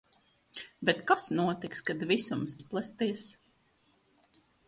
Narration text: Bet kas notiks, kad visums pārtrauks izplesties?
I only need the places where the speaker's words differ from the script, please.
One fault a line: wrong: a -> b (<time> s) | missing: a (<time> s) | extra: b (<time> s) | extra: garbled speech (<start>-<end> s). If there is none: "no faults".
missing: pārtrauks (2.6 s)